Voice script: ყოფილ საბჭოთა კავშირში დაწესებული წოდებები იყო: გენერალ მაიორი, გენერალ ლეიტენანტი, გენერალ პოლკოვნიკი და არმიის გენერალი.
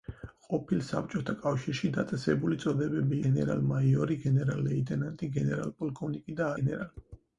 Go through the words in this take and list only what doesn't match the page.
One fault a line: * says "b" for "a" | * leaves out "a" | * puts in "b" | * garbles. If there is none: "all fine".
* leaves out "იყო"
* leaves out "არმიის"